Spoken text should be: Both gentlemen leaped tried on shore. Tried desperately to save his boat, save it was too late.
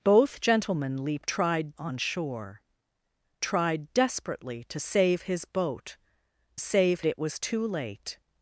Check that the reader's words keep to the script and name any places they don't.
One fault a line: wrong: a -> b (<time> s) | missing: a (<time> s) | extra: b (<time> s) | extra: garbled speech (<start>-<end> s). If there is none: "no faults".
no faults